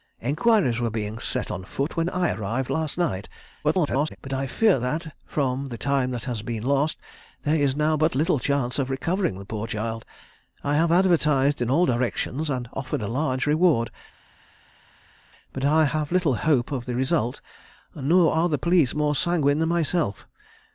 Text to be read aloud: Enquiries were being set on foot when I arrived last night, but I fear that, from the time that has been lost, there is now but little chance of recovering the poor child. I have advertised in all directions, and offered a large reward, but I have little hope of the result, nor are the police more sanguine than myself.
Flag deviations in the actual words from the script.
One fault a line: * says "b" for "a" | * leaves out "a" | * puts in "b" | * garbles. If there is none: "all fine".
* garbles